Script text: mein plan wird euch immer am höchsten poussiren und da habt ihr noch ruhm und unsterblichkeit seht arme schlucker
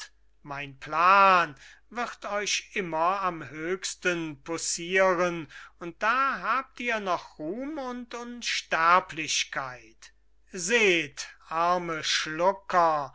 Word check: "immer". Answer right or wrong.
right